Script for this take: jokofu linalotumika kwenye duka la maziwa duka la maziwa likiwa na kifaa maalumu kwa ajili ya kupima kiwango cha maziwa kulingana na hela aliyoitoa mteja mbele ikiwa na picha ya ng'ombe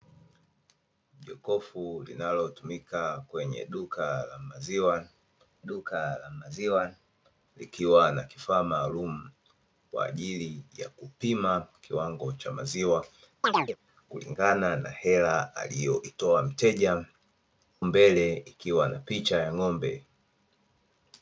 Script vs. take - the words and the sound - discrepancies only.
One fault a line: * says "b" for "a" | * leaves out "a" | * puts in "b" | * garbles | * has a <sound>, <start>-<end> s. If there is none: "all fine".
* has a chirp, 13.4-13.8 s